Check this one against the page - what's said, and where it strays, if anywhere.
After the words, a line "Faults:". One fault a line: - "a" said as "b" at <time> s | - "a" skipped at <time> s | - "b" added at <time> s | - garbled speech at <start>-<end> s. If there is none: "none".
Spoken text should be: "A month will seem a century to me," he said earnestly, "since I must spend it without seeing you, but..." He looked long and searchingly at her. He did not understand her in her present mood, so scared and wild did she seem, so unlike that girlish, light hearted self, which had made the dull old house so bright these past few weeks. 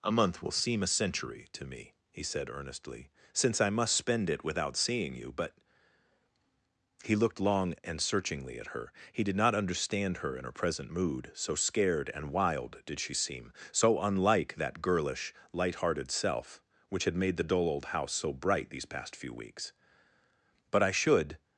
"A month will seem a century to me," he said earnestly, "since I must spend it without seeing you, but..." He looked long and searchingly at her. He did not understand her in her present mood, so scared and wild did she seem, so unlike that girlish, light hearted self, which had made the dull old house so bright these past few weeks. "But I should
Faults:
- "But I should" added at 20.7 s